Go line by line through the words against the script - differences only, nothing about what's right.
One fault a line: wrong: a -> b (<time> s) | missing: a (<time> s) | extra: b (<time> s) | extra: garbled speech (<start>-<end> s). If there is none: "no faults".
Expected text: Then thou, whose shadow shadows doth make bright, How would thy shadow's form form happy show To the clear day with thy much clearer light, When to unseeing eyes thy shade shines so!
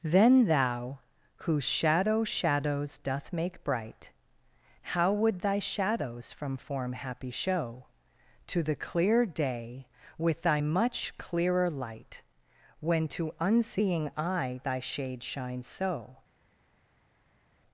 wrong: form -> from (6.3 s)
wrong: eyes -> eye (14.2 s)